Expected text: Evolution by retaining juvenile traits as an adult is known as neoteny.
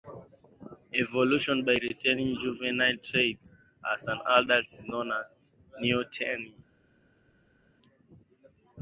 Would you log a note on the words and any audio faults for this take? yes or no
no